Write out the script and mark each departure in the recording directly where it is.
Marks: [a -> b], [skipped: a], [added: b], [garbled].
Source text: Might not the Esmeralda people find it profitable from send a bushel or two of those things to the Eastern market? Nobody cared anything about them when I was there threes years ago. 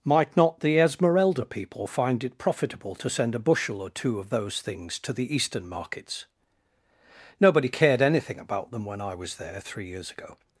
Might not the Esmeralda people find it profitable [from -> to] send a bushel or two of those things to the Eastern [market? -> markets] Nobody cared anything about them when I was there [threes -> three] years ago.